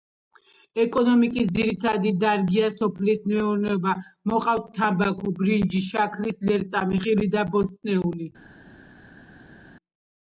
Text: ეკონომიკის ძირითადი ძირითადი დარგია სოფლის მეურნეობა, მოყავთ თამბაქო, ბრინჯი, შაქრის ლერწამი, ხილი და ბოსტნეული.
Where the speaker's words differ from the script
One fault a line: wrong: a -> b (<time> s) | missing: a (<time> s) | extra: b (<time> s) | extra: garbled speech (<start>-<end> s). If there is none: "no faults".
missing: ძირითადი (2.1 s)